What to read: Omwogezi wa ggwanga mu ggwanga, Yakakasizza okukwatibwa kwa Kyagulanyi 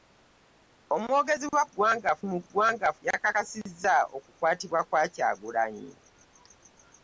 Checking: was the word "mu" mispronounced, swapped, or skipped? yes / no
no